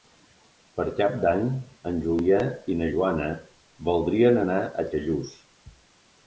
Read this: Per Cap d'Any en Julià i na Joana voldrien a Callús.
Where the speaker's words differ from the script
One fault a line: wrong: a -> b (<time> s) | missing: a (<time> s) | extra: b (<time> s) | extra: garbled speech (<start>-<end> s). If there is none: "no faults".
extra: anar (4.4 s)